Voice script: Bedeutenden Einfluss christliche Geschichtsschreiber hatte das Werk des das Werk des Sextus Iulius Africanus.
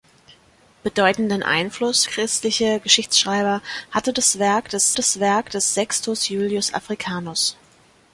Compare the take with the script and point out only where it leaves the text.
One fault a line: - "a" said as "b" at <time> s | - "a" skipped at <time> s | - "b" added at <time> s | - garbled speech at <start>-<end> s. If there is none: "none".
none